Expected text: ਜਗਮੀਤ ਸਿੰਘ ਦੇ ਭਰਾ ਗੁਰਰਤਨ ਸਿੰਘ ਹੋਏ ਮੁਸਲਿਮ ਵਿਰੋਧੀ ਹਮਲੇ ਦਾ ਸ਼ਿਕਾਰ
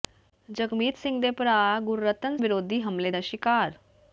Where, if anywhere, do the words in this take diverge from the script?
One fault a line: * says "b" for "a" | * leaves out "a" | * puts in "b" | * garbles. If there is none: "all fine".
* leaves out "ਸਿੰਘ ਹੋਏ ਮੁਸਲਿਮ"